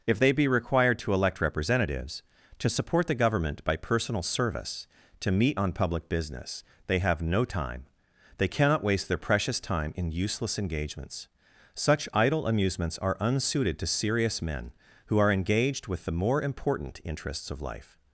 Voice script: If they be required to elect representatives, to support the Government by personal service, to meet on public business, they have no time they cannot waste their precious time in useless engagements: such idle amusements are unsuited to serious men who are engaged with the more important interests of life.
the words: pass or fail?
pass